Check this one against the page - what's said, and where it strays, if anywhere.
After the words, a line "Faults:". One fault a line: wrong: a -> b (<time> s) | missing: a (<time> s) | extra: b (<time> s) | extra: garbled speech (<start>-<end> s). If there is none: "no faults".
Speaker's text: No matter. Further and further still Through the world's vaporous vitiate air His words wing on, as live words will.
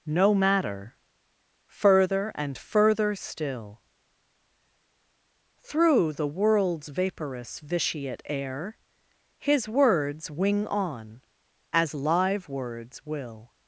No matter. Further and further still Through the world's vaporous vitiate air His words wing on, as live words will.
Faults:
no faults